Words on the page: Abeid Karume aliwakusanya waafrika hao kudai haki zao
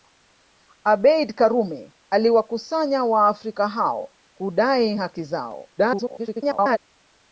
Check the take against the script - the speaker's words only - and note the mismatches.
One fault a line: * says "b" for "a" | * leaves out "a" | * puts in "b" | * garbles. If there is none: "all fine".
* garbles